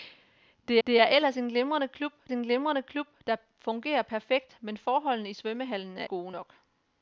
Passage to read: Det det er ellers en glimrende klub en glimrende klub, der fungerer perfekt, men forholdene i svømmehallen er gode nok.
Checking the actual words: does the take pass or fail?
pass